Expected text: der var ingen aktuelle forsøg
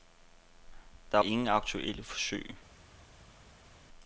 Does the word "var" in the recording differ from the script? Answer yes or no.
yes